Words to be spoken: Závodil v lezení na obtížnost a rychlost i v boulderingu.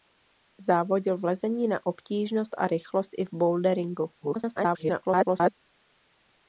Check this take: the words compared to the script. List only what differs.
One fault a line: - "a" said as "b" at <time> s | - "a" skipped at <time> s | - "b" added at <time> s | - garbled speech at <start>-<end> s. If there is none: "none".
- garbled speech at 4.2-5.5 s